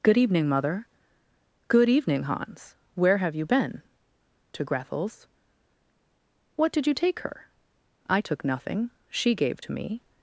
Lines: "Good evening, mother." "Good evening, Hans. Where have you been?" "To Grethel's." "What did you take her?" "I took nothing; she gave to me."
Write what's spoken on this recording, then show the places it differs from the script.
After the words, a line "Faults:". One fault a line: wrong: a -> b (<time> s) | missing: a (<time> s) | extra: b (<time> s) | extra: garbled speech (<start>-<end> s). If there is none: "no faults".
"Good evening, mother." "Good evening, Hans. Where have you been?" "To Grethel's." "What did you take her?" "I took nothing; she gave to me."
Faults:
no faults